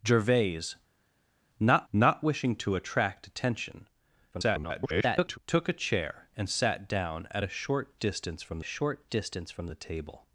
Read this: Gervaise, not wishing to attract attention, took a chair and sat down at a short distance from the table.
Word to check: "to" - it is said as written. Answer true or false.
true